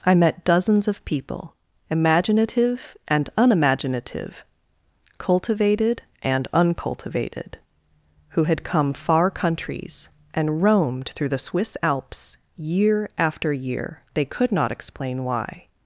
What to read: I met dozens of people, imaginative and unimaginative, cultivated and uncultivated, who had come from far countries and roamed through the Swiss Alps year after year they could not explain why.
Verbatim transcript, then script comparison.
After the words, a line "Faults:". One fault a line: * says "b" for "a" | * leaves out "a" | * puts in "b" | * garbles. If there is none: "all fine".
I met dozens of people, imaginative and unimaginative, cultivated and uncultivated, who had come far countries and roamed through the Swiss Alps year after year they could not explain why.
Faults:
* leaves out "from"